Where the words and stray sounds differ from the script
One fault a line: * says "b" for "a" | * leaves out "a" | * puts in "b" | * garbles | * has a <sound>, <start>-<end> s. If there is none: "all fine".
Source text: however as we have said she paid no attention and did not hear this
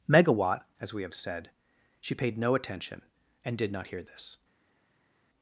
* says "megawatt" for "however"